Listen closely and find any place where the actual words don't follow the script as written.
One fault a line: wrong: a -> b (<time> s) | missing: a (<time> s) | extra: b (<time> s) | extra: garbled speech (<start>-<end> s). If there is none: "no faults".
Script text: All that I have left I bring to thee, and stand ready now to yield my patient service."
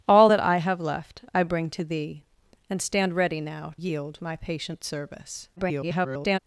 missing: to (3.7 s)
extra: garbled speech (5.6-6.4 s)